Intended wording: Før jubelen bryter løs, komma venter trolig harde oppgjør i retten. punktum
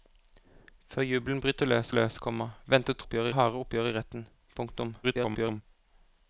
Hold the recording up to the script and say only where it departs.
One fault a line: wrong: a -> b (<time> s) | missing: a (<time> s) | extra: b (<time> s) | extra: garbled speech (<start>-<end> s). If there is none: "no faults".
extra: løs (1.9 s)
wrong: trolig -> oppgjør (3.1 s)
extra: garbled speech (5.0-5.6 s)